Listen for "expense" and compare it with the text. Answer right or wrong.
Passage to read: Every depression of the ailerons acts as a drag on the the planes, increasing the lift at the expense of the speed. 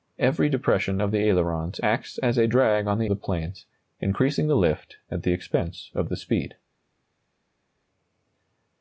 right